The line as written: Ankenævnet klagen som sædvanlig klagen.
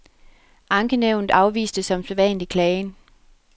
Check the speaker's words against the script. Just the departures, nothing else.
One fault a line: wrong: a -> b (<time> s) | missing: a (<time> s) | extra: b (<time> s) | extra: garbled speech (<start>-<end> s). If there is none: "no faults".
wrong: klagen -> afviste (1.3 s)